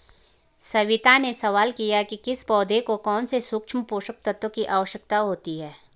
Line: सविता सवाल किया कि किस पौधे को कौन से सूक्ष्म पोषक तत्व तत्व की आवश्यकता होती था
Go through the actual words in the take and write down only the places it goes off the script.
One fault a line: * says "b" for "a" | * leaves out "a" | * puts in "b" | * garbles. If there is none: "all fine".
* puts in "ने"
* leaves out "तत्व"
* says "है" for "था"